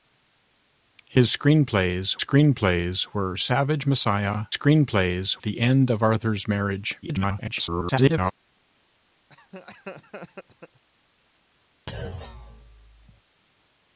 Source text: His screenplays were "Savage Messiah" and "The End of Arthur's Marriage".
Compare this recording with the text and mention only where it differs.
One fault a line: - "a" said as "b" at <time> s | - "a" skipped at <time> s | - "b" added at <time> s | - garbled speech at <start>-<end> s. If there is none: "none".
- "screenplays" added at 2.2 s
- "and" said as "screenplays" at 4.5 s
- garbled speech at 7.0-8.3 s